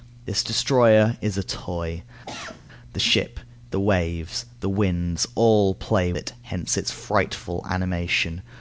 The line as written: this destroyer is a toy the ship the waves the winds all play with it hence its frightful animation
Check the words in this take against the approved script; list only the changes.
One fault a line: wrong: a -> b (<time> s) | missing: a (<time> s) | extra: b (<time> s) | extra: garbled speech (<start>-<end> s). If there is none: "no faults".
missing: with (6.1 s)